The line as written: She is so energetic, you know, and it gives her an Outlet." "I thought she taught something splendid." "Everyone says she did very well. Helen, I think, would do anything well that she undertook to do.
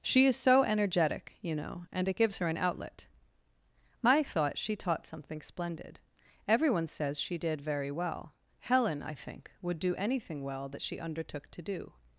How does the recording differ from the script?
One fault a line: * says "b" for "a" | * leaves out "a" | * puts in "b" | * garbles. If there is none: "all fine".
all fine